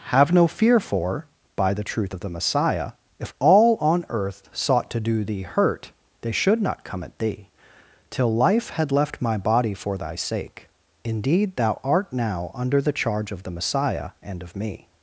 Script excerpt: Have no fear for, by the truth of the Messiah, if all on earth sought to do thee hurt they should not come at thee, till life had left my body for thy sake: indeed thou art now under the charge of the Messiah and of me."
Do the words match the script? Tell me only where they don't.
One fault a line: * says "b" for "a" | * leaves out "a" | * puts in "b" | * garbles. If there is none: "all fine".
all fine